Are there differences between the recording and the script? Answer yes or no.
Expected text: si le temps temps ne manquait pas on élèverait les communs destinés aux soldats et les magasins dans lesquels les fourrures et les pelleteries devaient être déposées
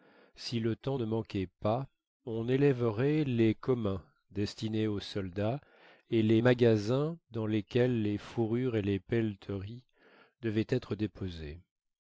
yes